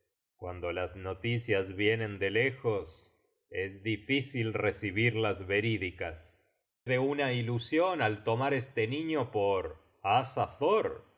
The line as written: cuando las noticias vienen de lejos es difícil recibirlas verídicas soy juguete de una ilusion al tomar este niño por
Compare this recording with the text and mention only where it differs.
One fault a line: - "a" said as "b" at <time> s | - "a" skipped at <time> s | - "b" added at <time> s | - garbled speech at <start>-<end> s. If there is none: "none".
- "soy juguete" skipped at 6.4 s